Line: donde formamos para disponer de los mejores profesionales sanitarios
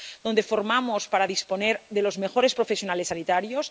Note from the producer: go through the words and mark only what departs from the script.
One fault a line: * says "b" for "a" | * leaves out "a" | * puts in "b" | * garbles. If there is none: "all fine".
all fine